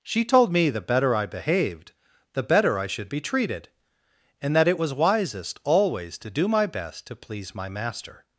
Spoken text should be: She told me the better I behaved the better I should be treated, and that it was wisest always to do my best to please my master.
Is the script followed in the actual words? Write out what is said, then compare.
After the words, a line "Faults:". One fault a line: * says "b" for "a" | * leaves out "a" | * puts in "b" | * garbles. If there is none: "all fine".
She told me the better I behaved the better I should be treated, and that it was wisest always to do my best to please my master.
Faults:
all fine